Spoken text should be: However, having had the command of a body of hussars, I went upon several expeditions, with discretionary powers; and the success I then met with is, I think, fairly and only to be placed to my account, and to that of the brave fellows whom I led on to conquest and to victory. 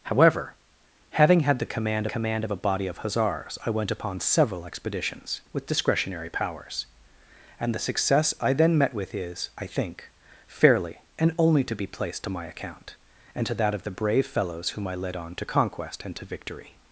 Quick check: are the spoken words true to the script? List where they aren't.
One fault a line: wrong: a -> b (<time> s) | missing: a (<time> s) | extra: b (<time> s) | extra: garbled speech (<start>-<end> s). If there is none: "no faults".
extra: command (2.1 s)